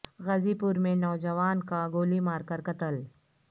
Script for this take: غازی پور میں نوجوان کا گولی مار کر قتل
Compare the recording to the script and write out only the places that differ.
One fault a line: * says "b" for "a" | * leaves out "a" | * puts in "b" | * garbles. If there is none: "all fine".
all fine